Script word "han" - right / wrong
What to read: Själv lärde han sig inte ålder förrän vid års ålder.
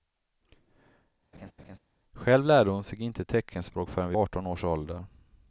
wrong